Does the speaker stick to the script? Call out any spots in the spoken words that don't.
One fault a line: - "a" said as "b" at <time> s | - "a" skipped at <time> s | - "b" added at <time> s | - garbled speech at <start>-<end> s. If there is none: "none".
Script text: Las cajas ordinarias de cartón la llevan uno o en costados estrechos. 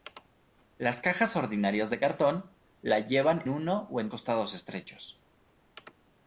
none